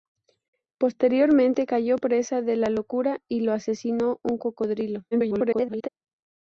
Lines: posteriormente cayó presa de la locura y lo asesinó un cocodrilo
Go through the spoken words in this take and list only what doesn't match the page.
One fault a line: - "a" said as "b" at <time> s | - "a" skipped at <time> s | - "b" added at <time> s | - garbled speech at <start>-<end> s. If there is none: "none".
- garbled speech at 5.1-5.9 s